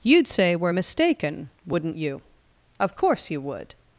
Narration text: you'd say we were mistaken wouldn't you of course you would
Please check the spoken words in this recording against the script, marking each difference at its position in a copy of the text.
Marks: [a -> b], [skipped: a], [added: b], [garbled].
you'd say [skipped: we] were mistaken wouldn't you of course you would